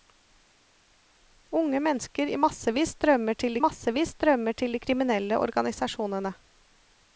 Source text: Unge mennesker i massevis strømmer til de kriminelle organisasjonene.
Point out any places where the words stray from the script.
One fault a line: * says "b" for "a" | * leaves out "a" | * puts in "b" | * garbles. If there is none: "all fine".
* puts in "massevis strømmer til"